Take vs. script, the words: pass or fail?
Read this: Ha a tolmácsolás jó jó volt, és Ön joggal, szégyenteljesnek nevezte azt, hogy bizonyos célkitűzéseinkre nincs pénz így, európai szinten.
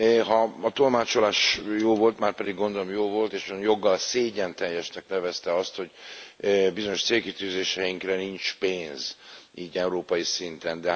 fail